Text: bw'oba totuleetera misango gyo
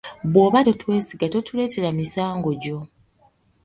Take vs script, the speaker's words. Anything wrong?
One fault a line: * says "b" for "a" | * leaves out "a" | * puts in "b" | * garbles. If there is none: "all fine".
* puts in "totwesiga"